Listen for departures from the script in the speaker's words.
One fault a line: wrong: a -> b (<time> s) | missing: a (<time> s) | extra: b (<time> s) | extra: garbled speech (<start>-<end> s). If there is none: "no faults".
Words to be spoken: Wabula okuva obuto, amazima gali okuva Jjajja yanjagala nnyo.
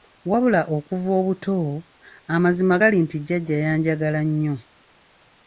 wrong: okuva -> nti (3.0 s)